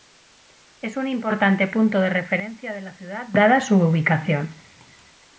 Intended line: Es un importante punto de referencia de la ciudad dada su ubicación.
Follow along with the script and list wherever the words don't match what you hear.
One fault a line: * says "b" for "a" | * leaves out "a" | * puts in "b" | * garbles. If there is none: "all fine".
all fine